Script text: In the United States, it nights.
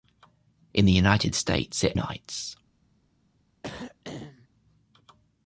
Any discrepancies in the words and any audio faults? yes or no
yes